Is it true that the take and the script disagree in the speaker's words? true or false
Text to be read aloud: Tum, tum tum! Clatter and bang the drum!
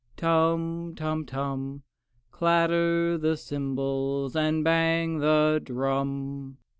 true